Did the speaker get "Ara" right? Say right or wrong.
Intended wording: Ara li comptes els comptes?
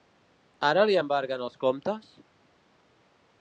right